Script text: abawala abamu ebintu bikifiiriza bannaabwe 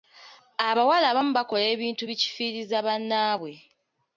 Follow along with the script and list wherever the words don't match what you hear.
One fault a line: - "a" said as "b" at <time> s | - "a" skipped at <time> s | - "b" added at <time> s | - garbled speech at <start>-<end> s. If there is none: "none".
- "bakola" added at 1.4 s